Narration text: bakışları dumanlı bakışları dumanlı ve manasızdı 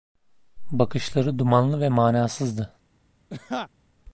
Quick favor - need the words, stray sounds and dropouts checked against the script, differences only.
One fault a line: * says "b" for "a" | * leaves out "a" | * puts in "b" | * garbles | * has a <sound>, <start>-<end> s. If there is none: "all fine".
* leaves out "bakışları dumanlı"
* has a laugh, 3.3-3.7 s